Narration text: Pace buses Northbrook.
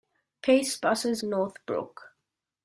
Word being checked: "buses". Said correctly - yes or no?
yes